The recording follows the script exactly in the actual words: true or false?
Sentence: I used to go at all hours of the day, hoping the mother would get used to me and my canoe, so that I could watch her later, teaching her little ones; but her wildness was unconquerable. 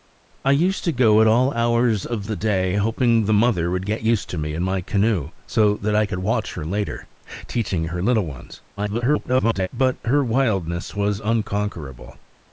false